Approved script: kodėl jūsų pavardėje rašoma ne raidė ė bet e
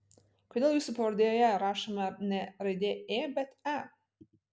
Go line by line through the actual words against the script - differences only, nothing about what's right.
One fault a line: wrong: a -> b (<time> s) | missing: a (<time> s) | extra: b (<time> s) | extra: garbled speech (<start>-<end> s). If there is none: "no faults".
no faults